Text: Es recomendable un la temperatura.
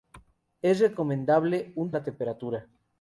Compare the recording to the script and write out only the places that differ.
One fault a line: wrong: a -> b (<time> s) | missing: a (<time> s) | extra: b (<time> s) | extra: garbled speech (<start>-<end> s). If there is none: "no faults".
no faults